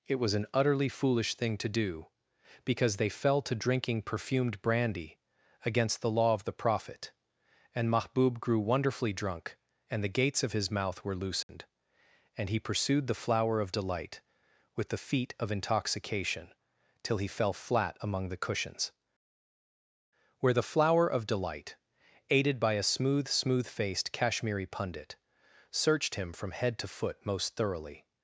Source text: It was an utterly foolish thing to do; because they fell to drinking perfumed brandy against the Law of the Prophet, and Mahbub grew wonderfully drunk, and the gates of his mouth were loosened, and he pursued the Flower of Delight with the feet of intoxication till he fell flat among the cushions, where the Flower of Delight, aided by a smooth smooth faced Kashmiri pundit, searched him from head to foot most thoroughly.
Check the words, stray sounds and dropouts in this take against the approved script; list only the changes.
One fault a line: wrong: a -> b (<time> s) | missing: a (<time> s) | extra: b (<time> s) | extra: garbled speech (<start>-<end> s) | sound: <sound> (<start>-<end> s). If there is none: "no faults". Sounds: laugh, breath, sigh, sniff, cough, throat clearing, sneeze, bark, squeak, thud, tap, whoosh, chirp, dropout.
sound: dropout (11.4-11.5 s)